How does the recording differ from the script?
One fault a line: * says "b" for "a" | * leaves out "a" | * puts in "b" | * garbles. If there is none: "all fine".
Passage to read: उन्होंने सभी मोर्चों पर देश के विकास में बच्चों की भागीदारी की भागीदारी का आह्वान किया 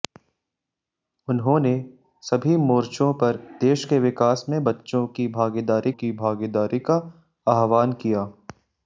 all fine